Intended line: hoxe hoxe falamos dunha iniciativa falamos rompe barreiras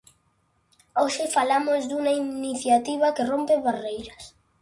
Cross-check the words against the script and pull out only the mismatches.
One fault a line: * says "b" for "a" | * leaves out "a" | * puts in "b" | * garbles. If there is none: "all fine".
* leaves out "hoxe"
* says "que" for "falamos"